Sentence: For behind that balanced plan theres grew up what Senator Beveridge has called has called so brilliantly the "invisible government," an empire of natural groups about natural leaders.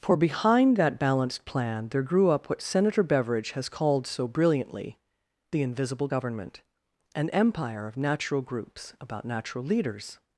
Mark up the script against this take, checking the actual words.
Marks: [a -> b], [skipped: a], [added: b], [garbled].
For behind that balanced plan [theres -> there] grew up what Senator Beveridge has called [skipped: has called] so brilliantly the "invisible government," an empire of natural groups about natural leaders.